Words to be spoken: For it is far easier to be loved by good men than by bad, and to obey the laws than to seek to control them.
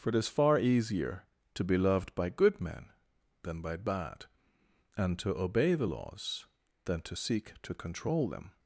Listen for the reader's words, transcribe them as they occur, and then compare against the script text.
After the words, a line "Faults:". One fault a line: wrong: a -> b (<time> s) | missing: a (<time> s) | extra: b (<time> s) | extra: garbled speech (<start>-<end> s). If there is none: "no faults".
For it is far easier to be loved by good men than by bad, and to obey the laws than to seek to control them.
Faults:
no faults